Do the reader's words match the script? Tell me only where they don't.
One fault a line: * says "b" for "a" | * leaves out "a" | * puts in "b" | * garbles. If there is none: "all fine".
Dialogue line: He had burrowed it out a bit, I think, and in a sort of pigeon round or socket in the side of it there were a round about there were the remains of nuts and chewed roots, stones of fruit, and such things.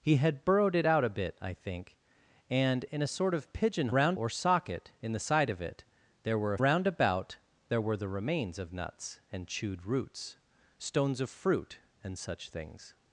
all fine